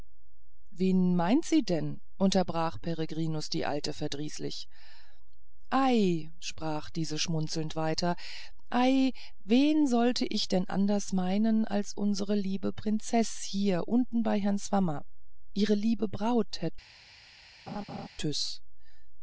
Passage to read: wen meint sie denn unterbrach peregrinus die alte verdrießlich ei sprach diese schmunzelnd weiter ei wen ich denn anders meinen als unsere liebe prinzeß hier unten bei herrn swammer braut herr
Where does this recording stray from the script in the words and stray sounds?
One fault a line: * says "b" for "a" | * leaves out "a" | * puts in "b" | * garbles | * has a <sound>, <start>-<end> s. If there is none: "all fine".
* puts in "sollte"
* puts in "ihre liebe"
* has a laugh, 17.7-18.1 s